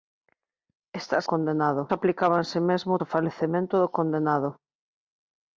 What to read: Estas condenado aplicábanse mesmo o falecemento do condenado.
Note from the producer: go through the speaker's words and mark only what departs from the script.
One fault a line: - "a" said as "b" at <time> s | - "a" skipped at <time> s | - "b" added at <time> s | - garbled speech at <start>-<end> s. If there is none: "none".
none